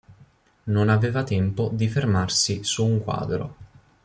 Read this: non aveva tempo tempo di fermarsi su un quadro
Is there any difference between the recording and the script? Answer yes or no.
yes